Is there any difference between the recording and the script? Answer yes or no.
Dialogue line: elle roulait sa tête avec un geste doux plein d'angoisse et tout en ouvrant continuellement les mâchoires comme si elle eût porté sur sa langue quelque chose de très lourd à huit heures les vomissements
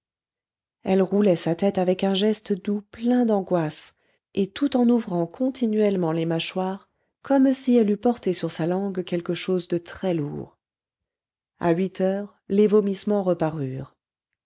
no